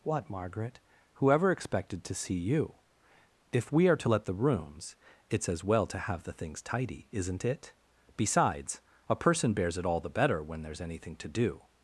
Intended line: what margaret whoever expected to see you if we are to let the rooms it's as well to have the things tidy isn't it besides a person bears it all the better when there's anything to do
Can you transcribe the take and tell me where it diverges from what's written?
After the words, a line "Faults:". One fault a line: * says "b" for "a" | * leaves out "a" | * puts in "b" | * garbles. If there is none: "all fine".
what margaret whoever expected to see you if we are to let the rooms it's as well to have the things tidy isn't it besides a person bears it all the better when there's anything to do
Faults:
all fine